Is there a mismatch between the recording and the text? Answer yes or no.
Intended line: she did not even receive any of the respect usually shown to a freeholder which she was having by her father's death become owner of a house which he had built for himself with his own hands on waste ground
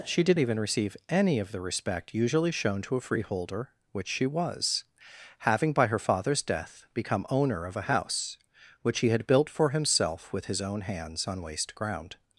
yes